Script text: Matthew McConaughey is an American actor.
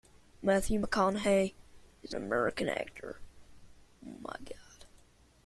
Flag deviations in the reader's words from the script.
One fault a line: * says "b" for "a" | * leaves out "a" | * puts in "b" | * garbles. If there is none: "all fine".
* leaves out "an"